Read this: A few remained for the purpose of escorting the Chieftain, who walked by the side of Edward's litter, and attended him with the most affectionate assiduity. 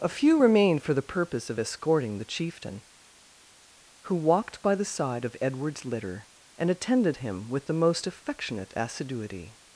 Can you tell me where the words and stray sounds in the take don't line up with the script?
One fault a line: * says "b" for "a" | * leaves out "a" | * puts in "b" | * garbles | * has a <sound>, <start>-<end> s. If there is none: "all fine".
all fine